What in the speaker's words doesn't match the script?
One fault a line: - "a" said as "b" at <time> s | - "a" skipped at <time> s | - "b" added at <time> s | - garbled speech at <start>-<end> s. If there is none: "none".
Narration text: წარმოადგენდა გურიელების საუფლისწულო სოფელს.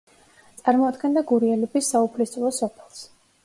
none